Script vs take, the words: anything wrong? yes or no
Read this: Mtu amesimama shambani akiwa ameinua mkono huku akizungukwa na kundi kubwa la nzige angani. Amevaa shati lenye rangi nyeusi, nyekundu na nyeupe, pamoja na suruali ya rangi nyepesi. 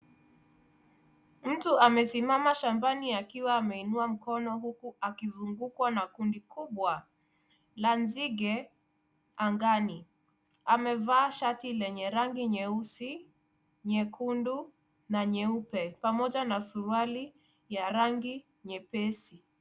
no